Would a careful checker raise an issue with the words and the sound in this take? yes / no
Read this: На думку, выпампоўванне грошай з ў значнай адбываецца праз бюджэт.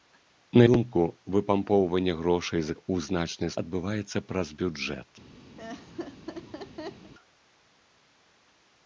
yes